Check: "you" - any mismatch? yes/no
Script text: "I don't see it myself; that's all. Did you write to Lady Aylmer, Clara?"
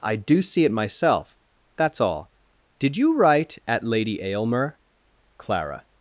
no